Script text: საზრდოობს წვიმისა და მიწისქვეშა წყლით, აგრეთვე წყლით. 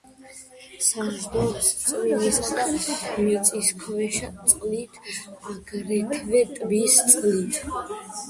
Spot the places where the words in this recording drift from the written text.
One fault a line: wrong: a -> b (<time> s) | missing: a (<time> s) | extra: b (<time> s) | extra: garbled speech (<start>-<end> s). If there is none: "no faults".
extra: ტბის (6.6 s)